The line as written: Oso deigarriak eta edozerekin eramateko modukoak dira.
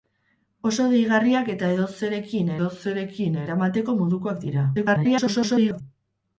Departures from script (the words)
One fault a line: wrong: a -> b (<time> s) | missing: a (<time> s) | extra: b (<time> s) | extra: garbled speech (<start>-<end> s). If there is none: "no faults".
extra: edozerekin (2.6 s)
extra: garbled speech (4.7-5.8 s)